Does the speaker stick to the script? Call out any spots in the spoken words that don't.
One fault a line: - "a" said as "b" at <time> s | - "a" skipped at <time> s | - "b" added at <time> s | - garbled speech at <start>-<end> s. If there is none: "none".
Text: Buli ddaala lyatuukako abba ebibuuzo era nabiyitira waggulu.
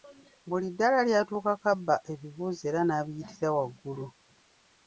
none